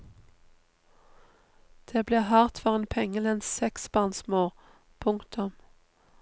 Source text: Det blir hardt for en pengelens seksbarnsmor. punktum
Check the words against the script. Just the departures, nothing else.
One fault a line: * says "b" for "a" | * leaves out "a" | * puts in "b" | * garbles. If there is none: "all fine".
all fine